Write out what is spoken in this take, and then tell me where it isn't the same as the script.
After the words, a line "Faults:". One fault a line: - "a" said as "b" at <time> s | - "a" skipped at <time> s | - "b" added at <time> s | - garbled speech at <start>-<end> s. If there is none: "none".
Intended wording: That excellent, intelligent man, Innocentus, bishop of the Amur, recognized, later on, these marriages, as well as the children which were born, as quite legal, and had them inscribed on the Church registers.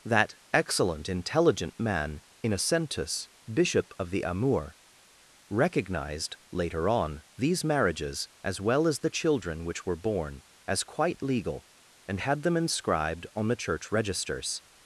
That excellent, intelligent man, Innocentus, bishop of the Amur, recognized, later on, these marriages, as well as the children which were born, as quite legal, and had them inscribed on the Church registers.
Faults:
none